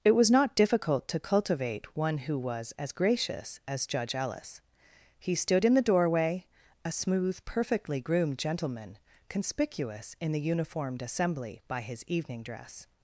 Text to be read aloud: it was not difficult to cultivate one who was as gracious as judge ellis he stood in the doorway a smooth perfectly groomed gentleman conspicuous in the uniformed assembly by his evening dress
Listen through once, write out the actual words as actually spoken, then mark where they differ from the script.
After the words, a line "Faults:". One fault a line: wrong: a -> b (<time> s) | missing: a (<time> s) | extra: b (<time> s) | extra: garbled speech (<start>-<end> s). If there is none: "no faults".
it was not difficult to cultivate one who was as gracious as judge ellis he stood in the doorway a smooth perfectly groomed gentleman conspicuous in the uniformed assembly by his evening dress
Faults:
no faults